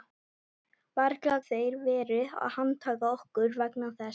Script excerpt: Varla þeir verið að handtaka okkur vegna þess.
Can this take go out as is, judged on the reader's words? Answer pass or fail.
pass